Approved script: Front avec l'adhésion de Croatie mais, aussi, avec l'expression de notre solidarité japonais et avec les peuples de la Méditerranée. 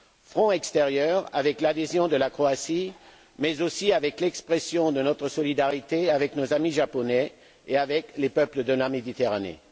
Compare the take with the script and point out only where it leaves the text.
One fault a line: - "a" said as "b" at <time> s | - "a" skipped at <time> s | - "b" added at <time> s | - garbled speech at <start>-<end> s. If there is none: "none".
- "extérieur" added at 0.5 s
- "la" added at 2.1 s
- "avec nos amis" added at 6.1 s